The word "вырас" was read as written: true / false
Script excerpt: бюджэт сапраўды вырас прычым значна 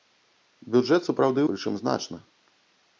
false